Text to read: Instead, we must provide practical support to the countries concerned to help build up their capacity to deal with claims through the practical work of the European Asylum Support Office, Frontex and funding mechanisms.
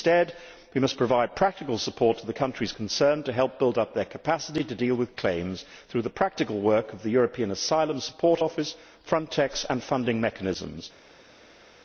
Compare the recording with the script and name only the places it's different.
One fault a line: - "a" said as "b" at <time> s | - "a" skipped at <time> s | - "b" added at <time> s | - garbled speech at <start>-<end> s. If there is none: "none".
none